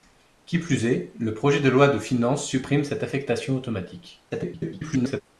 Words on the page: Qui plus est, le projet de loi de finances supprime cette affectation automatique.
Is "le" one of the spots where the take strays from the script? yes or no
no